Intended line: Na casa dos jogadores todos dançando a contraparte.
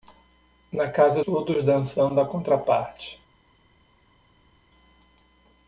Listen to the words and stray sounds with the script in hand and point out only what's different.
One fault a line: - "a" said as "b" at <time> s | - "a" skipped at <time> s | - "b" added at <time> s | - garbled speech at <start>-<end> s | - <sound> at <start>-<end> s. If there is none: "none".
- "dos jogadores" skipped at 1.2 s